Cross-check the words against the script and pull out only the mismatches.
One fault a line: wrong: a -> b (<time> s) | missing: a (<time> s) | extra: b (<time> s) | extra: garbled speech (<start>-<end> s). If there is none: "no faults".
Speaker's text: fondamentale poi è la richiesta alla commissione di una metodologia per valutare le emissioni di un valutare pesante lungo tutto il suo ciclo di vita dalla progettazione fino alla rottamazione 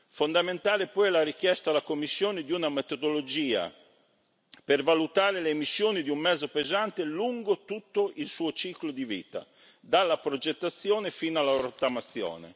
wrong: valutare -> mezzo (6.2 s)